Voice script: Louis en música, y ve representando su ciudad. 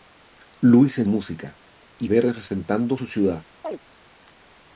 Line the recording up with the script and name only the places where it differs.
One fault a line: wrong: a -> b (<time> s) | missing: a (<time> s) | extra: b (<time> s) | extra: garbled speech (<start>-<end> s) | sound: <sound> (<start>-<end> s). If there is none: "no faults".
sound: chirp (3.6-3.8 s)